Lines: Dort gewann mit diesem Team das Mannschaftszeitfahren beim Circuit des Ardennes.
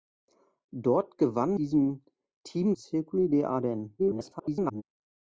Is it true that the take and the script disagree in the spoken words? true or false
true